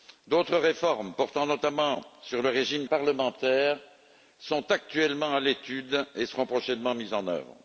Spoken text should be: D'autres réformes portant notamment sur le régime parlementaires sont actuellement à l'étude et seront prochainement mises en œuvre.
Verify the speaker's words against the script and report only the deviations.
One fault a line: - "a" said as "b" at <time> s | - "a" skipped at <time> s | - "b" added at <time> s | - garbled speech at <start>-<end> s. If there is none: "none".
none